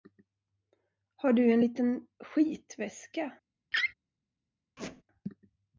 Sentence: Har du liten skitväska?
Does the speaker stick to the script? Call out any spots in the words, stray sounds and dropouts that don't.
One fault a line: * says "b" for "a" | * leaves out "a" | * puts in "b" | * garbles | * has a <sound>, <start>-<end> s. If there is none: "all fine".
* puts in "en"
* has a laugh, 3.7-3.9 s
* has a squeak, 4.8-5.0 s